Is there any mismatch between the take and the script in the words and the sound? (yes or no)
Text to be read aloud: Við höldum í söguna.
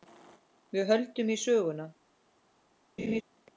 yes